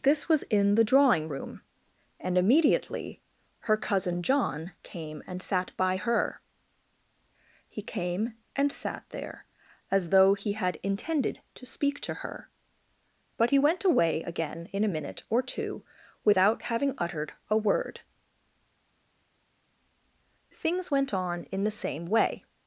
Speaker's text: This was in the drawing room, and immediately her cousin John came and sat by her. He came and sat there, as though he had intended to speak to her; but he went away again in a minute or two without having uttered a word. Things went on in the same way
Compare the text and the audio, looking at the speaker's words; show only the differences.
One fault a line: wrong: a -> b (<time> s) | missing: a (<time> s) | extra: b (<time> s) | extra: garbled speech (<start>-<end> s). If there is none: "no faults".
no faults